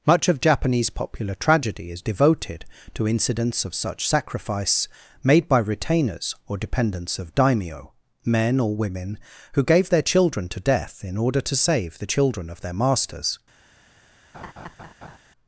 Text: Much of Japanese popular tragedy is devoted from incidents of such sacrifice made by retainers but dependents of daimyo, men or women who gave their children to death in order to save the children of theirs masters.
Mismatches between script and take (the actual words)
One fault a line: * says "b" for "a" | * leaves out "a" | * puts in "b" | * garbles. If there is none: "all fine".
* says "to" for "from"
* says "or" for "but"
* says "their" for "theirs"